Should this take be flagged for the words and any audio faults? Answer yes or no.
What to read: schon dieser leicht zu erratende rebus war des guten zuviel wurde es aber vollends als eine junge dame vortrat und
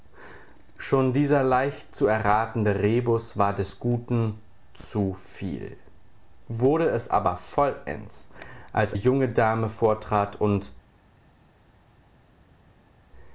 yes